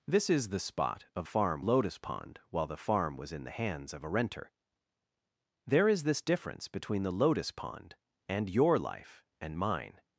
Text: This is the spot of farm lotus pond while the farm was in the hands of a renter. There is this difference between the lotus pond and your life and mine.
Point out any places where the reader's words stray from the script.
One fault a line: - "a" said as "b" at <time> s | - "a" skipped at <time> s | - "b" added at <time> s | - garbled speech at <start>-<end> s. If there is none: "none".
none